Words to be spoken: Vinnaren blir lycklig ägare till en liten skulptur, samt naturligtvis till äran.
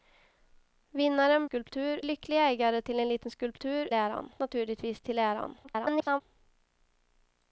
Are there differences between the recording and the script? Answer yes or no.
yes